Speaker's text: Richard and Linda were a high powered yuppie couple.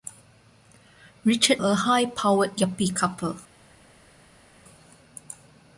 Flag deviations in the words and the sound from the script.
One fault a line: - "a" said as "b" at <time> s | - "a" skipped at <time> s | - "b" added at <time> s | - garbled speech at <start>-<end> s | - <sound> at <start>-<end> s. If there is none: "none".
- "and Linda were" skipped at 1.6 s